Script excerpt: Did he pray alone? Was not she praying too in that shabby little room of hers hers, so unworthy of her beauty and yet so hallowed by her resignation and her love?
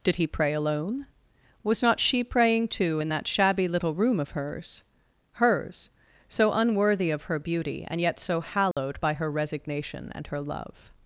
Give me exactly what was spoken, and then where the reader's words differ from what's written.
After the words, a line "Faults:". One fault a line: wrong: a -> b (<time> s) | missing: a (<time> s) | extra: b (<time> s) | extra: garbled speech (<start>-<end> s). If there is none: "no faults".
Did he pray alone? Was not she praying too in that shabby little room of hers hers, so unworthy of her beauty and yet so hallowed by her resignation and her love?
Faults:
no faults